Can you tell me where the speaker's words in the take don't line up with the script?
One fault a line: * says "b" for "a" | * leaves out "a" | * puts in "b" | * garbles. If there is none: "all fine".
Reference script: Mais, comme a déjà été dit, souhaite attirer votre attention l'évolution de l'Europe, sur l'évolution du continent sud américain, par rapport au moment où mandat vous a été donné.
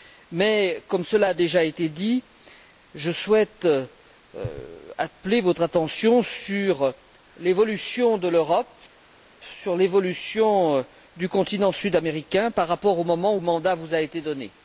* puts in "cela"
* puts in "je"
* puts in "sur"